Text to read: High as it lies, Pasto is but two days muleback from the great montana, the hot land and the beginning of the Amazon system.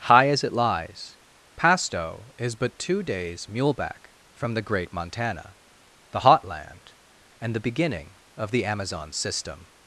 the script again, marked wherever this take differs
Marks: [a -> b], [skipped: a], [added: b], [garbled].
High as it lies, Pasto is but two days muleback from the great montana, the hot land and the beginning of the Amazon system.